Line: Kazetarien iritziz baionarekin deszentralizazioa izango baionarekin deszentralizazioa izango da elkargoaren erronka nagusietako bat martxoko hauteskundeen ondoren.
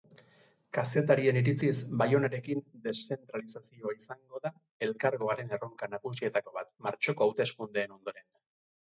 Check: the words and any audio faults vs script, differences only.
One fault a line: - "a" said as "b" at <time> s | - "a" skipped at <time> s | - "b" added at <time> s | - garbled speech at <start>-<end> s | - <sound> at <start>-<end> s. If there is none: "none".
- "baionarekin deszentralizazioa izango" skipped at 4.4 s